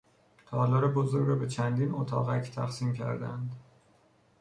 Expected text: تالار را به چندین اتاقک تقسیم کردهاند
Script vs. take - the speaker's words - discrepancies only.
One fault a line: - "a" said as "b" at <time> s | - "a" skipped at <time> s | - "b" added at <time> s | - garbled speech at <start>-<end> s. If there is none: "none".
- "بزرگ" added at 0.9 s